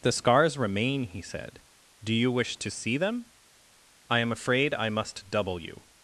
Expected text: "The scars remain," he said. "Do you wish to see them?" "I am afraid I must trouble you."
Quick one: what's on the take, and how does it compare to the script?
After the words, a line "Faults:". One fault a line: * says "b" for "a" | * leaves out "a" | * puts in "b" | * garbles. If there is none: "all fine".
"The scars remain," he said. "Do you wish to see them?" "I am afraid I must double you."
Faults:
* says "double" for "trouble"